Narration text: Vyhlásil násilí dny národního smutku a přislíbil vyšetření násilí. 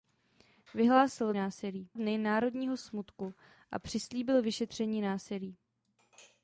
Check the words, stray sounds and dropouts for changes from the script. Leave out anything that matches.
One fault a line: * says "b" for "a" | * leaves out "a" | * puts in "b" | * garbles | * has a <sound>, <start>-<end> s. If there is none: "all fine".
all fine